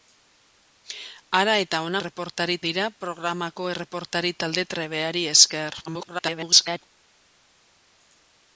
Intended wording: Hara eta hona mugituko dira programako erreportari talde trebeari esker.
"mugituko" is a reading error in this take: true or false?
true